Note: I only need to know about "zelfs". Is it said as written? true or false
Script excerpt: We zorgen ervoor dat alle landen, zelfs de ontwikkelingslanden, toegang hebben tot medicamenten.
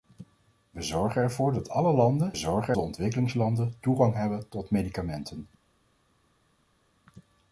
false